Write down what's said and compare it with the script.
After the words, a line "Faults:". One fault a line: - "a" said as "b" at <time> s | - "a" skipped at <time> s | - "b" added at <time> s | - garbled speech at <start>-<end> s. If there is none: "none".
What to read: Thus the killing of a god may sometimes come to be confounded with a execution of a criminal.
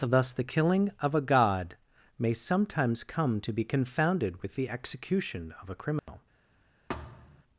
Thus the killing of a god may sometimes come to be confounded with the execution of a criminal.
Faults:
- "a" said as "the" at 4.5 s